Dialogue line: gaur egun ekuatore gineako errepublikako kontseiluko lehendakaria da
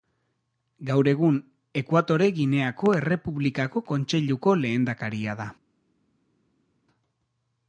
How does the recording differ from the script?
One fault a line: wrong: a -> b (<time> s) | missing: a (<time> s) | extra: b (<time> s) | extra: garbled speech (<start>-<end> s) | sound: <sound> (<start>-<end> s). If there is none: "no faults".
no faults